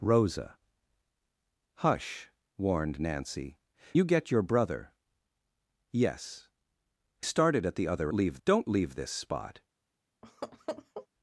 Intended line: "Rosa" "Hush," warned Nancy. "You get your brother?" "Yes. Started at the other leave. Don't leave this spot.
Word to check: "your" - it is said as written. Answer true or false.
true